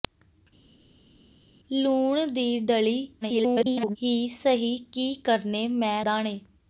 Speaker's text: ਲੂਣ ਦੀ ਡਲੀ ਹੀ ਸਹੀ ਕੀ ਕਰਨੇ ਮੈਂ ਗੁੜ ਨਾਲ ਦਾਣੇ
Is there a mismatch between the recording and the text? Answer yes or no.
yes